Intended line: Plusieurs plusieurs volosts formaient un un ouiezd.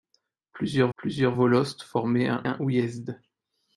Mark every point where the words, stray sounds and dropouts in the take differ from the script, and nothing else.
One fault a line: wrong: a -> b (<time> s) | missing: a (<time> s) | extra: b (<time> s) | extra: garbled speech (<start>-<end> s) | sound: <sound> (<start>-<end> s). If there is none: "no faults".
no faults